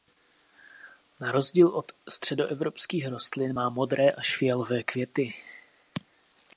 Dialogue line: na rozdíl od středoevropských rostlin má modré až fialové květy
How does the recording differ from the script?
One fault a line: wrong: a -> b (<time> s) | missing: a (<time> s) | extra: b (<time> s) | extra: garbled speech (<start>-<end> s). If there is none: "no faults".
no faults